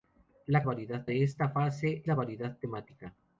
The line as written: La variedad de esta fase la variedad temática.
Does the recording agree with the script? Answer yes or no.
yes